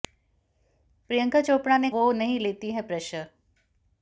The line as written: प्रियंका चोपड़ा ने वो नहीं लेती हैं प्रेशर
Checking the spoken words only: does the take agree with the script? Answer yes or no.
yes